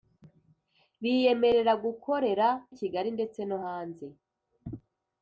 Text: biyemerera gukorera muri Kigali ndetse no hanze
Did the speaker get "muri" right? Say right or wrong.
wrong